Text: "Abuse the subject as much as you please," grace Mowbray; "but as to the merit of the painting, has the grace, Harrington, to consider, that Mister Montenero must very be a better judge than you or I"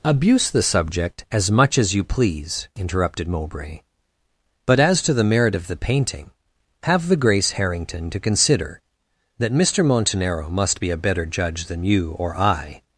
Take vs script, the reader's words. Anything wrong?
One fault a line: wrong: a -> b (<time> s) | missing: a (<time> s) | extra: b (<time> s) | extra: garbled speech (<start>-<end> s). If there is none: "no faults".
wrong: grace -> interrupted (2.8 s)
wrong: has -> have (6.8 s)
missing: very (10.8 s)